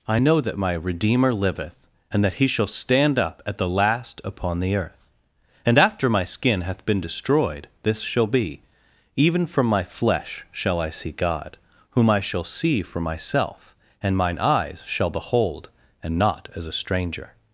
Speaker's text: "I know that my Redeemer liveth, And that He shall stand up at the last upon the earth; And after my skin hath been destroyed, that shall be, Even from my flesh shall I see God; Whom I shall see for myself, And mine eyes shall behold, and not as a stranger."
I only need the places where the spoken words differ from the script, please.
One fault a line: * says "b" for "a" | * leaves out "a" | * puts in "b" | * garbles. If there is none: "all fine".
* says "this" for "that"